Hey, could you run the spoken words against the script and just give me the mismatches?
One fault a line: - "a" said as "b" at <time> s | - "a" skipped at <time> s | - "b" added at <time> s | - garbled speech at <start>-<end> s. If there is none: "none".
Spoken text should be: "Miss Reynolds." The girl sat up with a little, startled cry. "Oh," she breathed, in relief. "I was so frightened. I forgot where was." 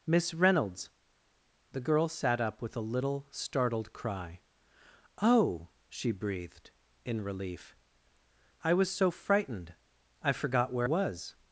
none